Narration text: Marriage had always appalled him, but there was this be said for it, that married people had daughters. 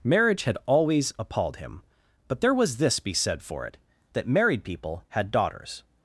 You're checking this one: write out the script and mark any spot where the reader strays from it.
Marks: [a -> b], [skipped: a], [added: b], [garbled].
Marriage had always appalled him, but there was this be said for it, that married people had daughters.